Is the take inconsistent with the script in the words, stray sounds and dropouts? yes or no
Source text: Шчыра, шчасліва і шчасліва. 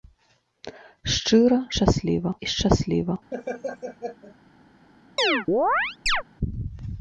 yes